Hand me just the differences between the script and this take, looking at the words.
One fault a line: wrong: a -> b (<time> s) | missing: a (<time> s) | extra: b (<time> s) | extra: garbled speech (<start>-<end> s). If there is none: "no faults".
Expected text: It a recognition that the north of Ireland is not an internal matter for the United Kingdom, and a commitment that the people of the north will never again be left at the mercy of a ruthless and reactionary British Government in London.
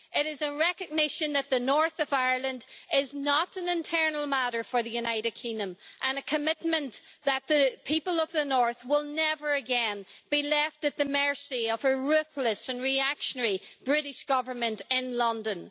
extra: is (0.2 s)